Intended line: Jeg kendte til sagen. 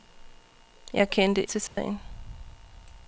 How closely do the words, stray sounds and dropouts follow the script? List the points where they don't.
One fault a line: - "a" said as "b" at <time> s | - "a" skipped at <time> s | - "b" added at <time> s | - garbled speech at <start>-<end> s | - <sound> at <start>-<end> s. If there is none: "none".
- dropout at 1.7-1.8 s